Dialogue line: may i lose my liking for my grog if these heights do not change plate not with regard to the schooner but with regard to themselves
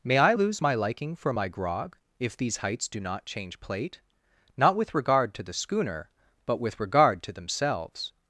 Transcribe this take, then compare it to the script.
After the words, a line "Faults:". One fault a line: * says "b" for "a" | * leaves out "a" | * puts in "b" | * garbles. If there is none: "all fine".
may i lose my liking for my grog if these heights do not change plate not with regard to the schooner but with regard to themselves
Faults:
all fine